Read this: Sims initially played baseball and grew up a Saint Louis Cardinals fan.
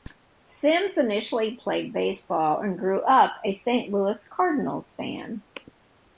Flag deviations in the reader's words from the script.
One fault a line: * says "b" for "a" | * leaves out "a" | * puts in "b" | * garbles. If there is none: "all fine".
all fine